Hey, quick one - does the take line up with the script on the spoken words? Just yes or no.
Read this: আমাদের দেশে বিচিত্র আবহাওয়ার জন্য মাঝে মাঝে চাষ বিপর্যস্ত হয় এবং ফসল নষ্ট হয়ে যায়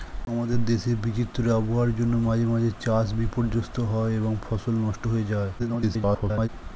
no